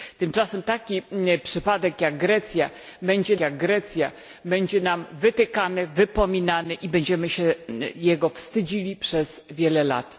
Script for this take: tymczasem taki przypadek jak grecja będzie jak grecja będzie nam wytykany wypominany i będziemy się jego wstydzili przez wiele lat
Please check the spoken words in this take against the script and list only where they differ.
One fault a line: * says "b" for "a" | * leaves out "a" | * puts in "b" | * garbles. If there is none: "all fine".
all fine